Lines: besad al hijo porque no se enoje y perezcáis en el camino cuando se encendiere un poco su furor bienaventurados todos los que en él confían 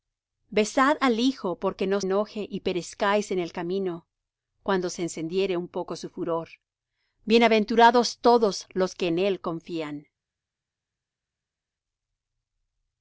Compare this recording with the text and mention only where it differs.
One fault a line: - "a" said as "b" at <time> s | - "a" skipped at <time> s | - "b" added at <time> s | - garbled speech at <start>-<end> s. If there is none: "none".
- "se" skipped at 2.0 s